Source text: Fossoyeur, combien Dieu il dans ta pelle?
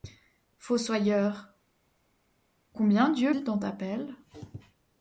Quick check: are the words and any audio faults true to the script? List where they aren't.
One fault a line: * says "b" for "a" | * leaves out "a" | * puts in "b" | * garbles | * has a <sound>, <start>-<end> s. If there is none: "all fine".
all fine